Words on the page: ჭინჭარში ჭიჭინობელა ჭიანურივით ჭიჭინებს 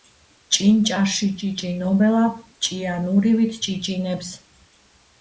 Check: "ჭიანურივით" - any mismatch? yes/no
no